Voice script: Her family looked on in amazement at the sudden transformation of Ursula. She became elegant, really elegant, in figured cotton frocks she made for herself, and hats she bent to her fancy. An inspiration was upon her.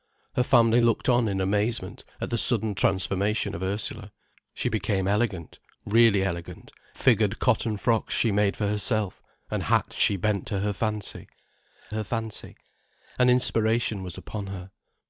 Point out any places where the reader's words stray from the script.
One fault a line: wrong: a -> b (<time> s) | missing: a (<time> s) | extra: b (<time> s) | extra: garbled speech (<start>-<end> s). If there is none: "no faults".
missing: in (6.7 s)
extra: her fancy (11.9 s)